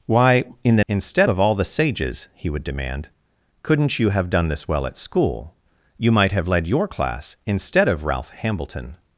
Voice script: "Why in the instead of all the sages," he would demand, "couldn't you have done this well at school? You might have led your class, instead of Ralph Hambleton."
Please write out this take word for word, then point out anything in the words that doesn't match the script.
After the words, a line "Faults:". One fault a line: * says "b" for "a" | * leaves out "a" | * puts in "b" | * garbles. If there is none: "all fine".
"Why in the instead of all the sages," he would demand, "couldn't you have done this well at school? You might have led your class, instead of Ralph Hambleton."
Faults:
all fine